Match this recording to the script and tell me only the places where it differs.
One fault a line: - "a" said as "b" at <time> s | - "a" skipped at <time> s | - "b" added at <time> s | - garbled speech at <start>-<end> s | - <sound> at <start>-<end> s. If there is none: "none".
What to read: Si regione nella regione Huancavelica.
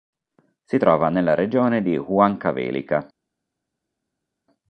- "regione" said as "trova" at 0.8 s
- "di" added at 1.8 s